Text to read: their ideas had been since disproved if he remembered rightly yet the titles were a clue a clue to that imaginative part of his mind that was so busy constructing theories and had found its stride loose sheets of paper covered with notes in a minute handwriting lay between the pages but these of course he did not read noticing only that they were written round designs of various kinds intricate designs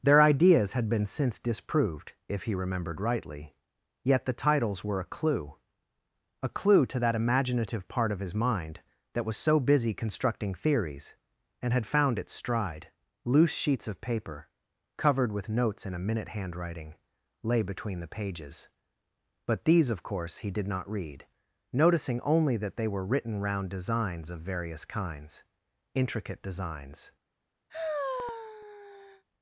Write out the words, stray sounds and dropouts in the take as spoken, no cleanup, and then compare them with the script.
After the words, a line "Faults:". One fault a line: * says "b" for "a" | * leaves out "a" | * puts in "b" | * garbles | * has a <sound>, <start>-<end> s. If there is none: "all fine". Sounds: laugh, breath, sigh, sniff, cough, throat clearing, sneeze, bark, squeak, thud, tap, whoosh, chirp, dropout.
their ideas had been since disproved if he remembered rightly yet the titles were a clue a clue to that imaginative part of his mind that was so busy constructing theories and had found its stride loose sheets of paper covered with notes in a minute handwriting lay between the pages but these of course he did not read noticing only that they were written round designs of various kinds intricate designs
Faults:
* has a sigh, 27.7-29.2 s